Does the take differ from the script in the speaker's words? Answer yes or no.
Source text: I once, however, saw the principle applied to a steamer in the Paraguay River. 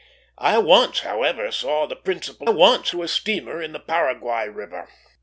yes